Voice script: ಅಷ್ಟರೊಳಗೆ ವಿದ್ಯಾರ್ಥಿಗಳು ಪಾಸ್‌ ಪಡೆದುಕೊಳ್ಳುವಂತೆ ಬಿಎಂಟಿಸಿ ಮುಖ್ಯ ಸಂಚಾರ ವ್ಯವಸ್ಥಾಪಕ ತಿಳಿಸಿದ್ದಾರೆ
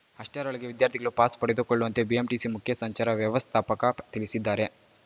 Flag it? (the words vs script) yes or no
no